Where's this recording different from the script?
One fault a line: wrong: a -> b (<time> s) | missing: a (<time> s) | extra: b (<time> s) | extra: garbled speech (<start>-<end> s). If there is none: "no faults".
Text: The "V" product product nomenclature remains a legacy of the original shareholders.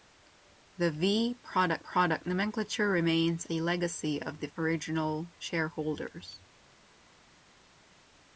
no faults